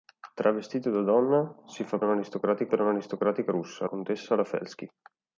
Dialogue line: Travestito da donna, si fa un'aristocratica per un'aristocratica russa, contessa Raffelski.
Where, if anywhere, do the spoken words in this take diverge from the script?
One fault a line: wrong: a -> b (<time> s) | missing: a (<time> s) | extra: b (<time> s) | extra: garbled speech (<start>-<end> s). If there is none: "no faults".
no faults